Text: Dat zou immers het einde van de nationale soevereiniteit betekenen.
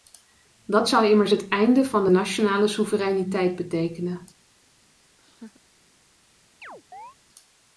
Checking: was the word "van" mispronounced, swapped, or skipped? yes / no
no